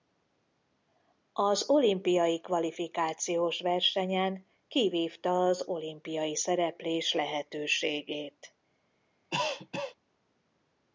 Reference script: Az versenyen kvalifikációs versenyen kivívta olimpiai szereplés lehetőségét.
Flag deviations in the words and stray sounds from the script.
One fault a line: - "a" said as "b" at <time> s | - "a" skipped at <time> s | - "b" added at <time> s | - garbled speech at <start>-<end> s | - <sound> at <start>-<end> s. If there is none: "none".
- "versenyen" said as "olimpiai" at 1.7 s
- "az" added at 5.5 s
- cough at 9.3-10.0 s